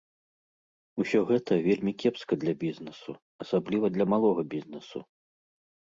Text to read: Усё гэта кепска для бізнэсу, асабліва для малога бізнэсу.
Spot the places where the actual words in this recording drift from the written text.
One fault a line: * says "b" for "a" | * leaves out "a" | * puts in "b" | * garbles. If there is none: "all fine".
* puts in "вельмі"